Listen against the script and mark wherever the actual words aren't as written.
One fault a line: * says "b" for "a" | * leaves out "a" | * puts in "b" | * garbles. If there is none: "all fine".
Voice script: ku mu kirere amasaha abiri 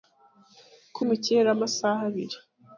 all fine